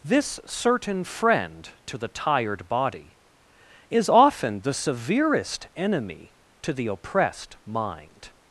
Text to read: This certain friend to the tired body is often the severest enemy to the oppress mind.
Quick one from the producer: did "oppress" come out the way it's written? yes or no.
no